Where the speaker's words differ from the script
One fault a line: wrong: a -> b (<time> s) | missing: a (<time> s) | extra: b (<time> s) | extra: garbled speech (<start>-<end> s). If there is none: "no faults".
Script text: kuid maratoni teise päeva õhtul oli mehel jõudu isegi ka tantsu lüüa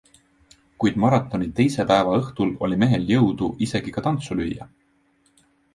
no faults